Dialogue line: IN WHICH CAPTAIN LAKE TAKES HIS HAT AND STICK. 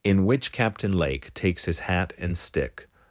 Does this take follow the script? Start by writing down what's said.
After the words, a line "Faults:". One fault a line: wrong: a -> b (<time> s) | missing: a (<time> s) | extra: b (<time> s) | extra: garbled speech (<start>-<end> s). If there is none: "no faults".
IN WHICH CAPTAIN LAKE TAKES HIS HAT AND STICK.
Faults:
no faults